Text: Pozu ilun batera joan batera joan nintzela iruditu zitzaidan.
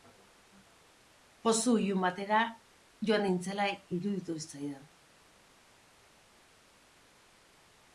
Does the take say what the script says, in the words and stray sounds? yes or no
no